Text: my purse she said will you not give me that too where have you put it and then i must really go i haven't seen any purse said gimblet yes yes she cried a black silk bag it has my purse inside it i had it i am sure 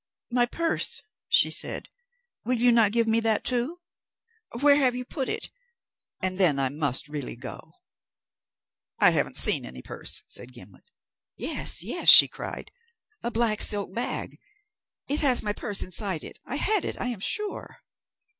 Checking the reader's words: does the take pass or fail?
pass